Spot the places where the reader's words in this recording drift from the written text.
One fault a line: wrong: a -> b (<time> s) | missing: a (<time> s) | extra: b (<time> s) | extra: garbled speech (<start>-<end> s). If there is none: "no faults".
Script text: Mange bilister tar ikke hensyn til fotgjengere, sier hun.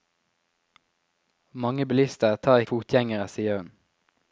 missing: ikke hensyn til (2.6 s)